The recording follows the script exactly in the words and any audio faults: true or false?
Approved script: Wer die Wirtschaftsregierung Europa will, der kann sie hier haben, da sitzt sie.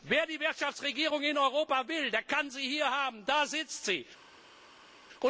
false